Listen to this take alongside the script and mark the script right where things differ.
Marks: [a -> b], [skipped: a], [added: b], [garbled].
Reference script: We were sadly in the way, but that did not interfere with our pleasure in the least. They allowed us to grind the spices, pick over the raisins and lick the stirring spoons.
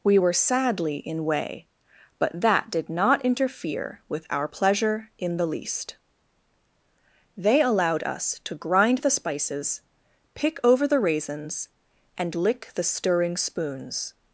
We were sadly in [skipped: the] way, but that did not interfere with our pleasure in the least. They allowed us to grind the spices, pick over the raisins and lick the stirring spoons.